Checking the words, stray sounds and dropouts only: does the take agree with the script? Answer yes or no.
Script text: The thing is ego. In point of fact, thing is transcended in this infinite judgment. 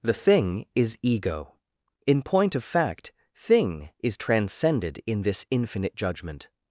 yes